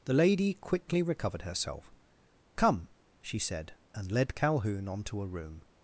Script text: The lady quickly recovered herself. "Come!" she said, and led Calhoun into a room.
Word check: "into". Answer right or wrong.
wrong